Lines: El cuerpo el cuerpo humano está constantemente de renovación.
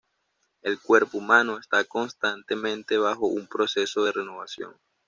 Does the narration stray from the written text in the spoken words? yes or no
yes